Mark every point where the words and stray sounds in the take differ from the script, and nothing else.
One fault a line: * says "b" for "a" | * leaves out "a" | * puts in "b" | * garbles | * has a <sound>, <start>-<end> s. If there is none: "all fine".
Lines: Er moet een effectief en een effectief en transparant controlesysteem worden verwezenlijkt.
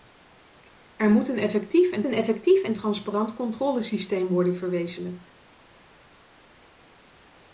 all fine